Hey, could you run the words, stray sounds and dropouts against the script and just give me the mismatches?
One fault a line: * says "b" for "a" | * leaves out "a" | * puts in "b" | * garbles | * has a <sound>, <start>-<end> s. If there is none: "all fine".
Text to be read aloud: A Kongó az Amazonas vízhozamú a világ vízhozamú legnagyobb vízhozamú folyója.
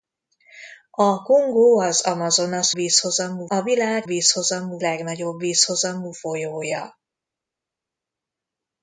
all fine